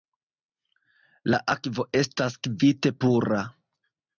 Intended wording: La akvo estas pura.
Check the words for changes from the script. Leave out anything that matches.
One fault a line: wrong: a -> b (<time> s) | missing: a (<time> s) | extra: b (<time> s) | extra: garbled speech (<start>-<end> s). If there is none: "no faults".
extra: kvite (2.5 s)